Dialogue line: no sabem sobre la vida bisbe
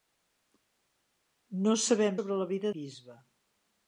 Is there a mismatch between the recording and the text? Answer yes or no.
no